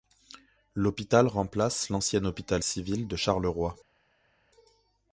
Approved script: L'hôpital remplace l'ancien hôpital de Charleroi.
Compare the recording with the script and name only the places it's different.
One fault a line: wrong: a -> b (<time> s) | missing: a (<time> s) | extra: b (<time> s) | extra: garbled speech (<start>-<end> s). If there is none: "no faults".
extra: civil (2.6 s)